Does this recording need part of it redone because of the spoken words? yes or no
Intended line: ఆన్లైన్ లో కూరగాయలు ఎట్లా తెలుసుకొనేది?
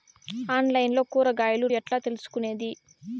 no